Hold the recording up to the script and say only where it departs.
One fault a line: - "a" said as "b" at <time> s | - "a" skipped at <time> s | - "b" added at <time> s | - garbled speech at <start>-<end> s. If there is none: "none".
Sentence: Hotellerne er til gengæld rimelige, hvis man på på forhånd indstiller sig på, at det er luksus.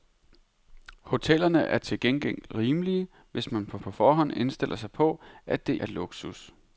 none